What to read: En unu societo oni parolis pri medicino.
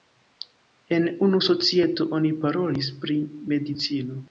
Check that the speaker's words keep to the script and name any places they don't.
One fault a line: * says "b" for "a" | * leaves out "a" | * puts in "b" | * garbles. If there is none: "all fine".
all fine